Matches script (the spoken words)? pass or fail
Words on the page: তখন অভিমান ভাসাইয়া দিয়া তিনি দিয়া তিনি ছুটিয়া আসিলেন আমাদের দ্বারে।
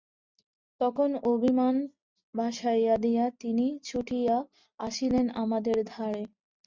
fail